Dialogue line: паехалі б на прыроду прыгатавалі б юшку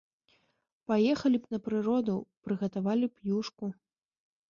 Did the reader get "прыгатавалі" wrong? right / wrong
right